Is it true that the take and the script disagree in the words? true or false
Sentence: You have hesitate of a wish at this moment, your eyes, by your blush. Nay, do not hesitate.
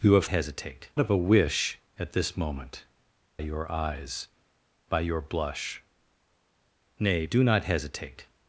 false